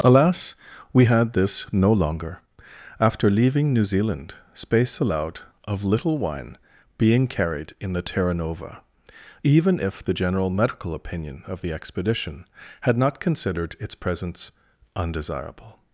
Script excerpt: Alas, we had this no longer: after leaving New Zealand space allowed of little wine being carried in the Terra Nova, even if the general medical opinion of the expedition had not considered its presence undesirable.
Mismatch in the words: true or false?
false